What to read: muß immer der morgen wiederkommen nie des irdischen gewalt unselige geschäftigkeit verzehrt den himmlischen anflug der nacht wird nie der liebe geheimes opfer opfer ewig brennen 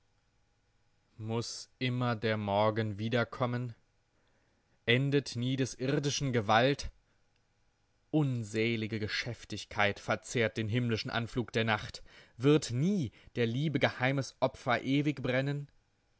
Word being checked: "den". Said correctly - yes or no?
yes